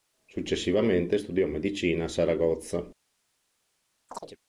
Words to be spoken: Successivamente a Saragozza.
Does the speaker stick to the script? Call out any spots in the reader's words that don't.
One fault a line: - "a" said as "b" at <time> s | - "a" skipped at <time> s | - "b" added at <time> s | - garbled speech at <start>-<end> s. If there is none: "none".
- "studiò medicina" added at 1.2 s